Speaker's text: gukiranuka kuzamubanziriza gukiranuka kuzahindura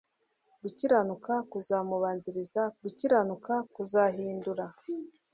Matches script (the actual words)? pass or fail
pass